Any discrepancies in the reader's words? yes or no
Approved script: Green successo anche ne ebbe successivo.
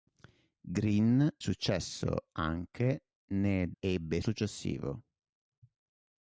no